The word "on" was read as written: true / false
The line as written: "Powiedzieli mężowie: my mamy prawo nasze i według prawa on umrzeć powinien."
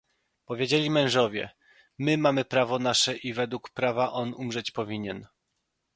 true